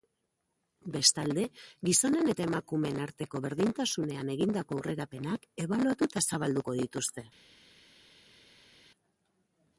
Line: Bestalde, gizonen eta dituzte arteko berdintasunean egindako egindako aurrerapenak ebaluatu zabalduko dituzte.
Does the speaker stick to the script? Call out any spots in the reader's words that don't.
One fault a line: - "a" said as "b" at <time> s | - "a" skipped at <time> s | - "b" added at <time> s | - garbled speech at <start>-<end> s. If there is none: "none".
- "dituzte" said as "emakumeen" at 2.5 s
- "egindako" skipped at 4.8 s
- "eta" added at 6.1 s